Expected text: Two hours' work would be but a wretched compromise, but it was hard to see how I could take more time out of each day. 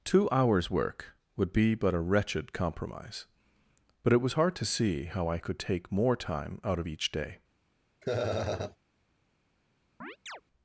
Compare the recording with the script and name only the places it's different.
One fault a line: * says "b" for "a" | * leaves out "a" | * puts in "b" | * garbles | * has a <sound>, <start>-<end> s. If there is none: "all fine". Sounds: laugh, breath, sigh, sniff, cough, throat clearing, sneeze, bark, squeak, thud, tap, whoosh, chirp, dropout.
* has a laugh, 8.0-8.8 s
* has a chirp, 10.0-10.4 s